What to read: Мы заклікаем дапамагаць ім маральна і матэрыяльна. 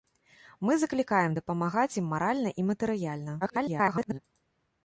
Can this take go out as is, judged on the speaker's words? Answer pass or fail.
fail